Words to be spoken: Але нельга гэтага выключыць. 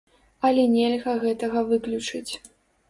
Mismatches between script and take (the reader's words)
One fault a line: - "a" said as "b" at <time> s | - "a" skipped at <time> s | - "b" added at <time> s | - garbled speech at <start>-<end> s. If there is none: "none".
none